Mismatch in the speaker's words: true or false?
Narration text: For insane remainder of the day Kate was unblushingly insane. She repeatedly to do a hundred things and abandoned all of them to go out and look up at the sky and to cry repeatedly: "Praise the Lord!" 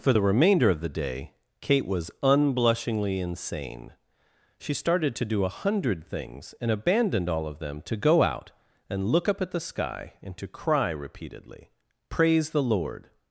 true